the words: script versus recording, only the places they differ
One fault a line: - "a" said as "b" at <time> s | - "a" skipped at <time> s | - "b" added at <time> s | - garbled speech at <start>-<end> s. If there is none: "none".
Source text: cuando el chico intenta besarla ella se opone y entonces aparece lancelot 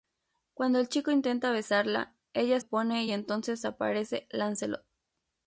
- "se" skipped at 2.6 s